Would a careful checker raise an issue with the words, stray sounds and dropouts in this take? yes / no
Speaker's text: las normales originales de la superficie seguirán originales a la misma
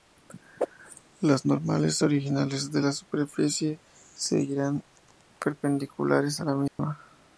yes